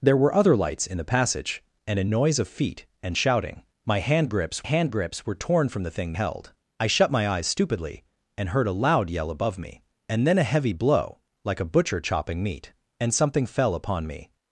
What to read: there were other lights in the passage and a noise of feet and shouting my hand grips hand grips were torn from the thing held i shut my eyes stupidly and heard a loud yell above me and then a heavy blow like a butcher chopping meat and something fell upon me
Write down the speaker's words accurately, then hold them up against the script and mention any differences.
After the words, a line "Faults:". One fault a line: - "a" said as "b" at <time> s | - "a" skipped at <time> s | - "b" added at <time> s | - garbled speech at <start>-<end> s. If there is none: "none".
there were other lights in the passage and a noise of feet and shouting my hand grips hand grips were torn from the thing held i shut my eyes stupidly and heard a loud yell above me and then a heavy blow like a butcher chopping meat and something fell upon me
Faults:
none